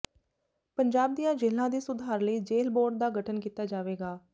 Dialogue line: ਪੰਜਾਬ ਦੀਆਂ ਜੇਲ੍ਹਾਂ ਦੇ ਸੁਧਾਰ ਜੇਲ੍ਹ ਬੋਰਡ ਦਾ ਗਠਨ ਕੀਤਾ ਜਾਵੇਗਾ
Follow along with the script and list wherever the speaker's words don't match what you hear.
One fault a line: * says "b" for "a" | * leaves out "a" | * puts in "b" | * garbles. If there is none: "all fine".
* puts in "ਲਈ"